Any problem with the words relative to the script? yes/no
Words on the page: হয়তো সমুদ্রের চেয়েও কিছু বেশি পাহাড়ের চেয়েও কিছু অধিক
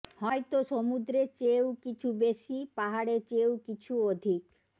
no